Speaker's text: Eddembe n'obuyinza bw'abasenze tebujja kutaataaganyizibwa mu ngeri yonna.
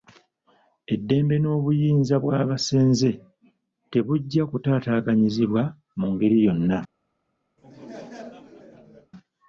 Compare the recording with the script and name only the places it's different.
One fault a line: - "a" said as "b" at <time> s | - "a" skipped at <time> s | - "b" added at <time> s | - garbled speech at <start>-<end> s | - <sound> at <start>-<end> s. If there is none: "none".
- laugh at 7.6-9.1 s